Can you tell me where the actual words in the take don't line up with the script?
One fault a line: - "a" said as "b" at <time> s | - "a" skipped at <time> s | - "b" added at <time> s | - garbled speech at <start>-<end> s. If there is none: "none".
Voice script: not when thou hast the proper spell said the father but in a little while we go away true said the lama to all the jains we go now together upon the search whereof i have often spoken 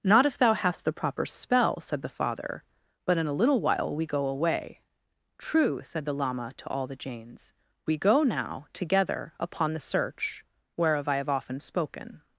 - "when" said as "if" at 0.2 s